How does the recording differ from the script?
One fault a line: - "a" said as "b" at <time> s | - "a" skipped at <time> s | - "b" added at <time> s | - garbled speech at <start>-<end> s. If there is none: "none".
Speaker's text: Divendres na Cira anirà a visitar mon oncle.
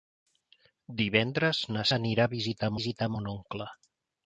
- "Cira" skipped at 1.9 s
- "visitar" added at 2.8 s